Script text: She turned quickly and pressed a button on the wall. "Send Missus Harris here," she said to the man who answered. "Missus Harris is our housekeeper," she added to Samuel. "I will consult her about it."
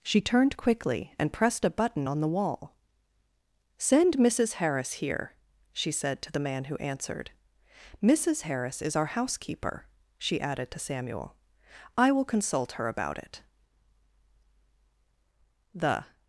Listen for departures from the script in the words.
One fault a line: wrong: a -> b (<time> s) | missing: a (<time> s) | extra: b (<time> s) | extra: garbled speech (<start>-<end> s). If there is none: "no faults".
extra: The (15.7 s)